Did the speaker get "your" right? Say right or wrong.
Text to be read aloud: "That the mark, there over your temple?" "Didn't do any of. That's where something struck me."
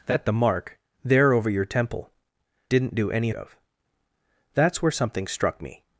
right